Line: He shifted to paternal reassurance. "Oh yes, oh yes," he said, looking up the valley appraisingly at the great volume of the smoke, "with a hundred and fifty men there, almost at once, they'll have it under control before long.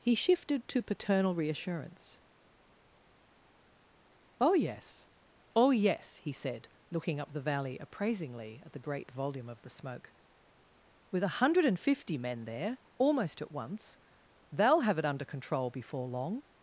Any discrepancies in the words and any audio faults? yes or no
no